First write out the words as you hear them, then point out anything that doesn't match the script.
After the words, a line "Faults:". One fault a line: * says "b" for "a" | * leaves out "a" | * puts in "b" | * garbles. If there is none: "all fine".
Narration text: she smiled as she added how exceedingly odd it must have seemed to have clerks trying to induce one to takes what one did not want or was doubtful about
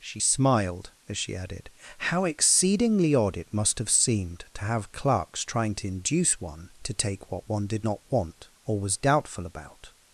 she smiled as she added how exceedingly odd it must have seemed to have clerks trying to induce one to take what one did not want or was doubtful about
Faults:
* says "take" for "takes"